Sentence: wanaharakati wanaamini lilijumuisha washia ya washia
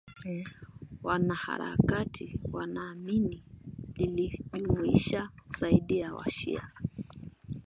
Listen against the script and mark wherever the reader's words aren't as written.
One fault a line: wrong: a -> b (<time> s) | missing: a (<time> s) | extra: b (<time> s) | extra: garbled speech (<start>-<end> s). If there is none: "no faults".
wrong: washia -> zaidi (5.5 s)